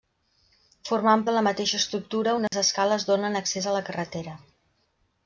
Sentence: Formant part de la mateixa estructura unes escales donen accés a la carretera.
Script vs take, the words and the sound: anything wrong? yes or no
yes